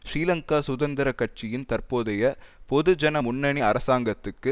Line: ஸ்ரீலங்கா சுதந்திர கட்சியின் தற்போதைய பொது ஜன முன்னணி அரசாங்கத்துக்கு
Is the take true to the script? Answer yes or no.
yes